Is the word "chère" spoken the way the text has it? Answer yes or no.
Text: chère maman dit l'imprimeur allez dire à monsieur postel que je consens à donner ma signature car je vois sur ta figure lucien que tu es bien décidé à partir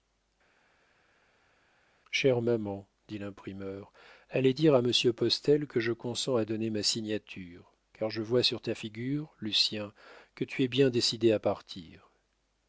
yes